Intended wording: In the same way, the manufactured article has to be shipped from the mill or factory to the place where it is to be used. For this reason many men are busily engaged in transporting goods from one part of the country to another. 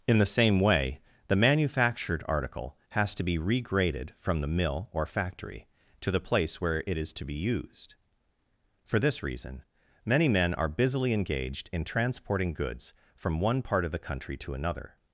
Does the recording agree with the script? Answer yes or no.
no